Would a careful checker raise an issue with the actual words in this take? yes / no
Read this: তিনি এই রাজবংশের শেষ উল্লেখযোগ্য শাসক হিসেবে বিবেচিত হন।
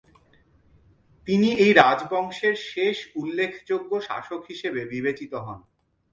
no